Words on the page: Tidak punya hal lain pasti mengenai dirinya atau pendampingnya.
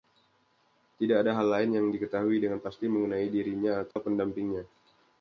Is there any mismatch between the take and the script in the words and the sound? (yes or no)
yes